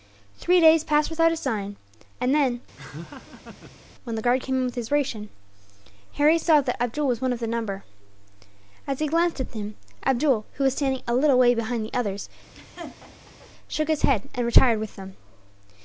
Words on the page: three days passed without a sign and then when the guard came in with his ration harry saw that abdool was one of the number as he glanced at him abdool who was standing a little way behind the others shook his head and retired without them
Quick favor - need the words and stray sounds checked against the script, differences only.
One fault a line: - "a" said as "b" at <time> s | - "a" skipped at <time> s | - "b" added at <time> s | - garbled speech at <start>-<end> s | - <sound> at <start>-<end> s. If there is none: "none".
- laugh at 2.8-3.8 s
- laugh at 12.5-13.5 s
- "without" said as "with" at 14.8 s